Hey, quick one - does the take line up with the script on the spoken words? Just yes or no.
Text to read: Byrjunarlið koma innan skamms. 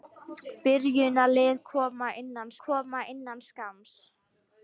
no